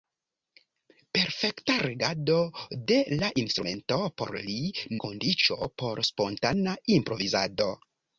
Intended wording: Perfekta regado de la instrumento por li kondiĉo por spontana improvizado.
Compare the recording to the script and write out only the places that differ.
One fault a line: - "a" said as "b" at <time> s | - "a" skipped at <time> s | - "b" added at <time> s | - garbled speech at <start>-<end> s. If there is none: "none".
none